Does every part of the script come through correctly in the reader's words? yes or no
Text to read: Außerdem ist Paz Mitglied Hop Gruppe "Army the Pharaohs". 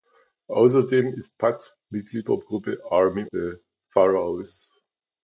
yes